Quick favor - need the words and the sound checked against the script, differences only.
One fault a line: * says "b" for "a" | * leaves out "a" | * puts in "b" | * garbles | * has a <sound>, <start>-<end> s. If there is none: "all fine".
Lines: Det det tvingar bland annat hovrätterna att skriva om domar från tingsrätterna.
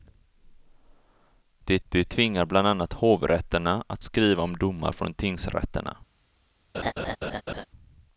* has a laugh, 6.7-7.7 s